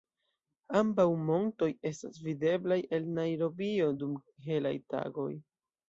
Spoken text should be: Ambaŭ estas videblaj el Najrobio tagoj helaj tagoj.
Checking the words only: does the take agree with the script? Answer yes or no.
no